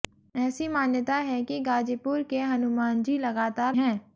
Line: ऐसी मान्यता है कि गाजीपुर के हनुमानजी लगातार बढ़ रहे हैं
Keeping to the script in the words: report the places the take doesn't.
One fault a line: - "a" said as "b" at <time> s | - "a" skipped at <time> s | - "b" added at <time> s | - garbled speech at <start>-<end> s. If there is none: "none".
- "बढ़ रहे" skipped at 3.8 s